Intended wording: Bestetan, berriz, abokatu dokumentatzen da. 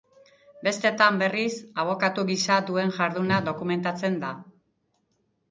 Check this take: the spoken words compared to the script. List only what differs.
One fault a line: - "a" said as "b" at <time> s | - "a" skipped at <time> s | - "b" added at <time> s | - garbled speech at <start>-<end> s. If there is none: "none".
- "gisa duen jarduna" added at 2.3 s